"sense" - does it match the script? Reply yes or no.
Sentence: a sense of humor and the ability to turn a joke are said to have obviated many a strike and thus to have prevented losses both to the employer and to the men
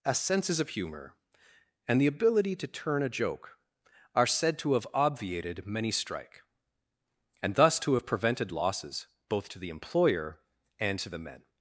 no